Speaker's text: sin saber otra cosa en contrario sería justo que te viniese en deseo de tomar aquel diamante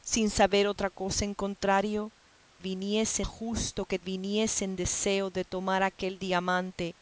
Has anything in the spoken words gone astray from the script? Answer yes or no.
yes